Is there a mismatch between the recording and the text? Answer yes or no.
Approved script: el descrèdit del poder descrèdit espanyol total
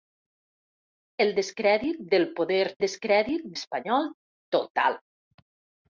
no